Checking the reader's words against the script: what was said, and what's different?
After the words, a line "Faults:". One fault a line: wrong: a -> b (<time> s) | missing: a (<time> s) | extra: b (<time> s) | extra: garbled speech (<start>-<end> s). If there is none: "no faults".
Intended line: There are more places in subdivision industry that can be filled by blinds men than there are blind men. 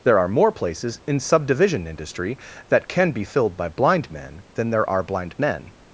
There are more places in subdivision industry that can be filled by blind men than there are blind men.
Faults:
wrong: blinds -> blind (3.7 s)